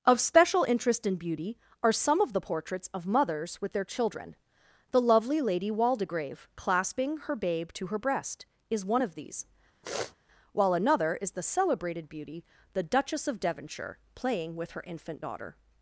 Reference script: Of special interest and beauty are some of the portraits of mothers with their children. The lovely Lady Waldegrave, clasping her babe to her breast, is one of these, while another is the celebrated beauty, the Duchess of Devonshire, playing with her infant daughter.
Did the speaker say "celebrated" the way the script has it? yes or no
yes